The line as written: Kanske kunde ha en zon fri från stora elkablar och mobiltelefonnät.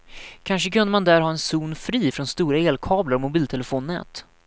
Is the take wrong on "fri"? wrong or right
right